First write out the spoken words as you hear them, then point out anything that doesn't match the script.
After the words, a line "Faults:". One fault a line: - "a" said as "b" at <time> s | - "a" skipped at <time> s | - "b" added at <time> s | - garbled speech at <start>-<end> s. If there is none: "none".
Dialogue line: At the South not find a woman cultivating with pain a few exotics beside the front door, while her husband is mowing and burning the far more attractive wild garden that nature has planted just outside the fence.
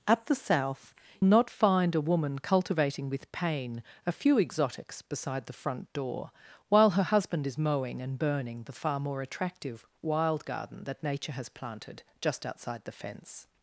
At the South not find a woman cultivating with pain a few exotics beside the front door, while her husband is mowing and burning the far more attractive wild garden that nature has planted just outside the fence.
Faults:
none